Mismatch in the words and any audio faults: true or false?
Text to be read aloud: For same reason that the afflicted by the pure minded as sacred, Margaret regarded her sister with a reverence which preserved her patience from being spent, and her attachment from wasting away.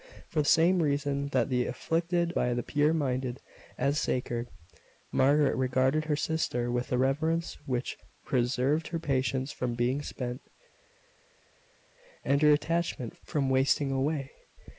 false